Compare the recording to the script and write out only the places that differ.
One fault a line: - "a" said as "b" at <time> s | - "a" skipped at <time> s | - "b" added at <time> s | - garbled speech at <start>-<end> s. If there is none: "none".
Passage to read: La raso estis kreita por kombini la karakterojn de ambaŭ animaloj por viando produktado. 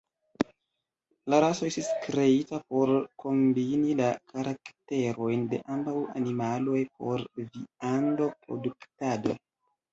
none